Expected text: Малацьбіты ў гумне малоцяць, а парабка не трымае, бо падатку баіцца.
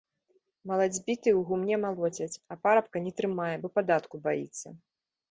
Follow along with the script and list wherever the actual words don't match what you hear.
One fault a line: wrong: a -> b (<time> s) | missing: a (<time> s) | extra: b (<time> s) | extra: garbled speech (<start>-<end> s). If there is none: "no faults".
no faults